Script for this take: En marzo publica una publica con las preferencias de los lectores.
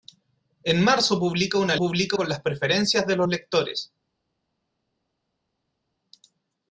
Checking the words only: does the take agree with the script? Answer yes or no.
yes